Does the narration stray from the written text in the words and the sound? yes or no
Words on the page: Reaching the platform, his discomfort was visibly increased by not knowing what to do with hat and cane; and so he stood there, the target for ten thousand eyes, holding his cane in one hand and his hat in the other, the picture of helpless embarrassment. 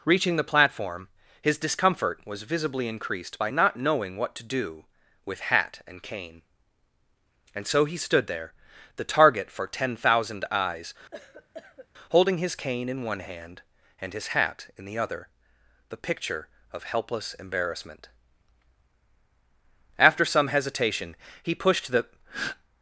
yes